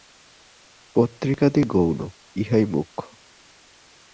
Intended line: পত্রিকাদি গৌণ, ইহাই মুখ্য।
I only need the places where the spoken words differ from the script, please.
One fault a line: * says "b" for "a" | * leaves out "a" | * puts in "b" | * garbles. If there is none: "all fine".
all fine